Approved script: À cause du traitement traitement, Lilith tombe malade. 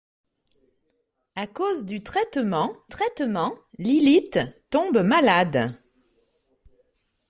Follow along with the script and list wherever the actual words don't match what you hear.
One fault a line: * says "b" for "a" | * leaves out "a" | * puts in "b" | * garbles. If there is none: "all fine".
all fine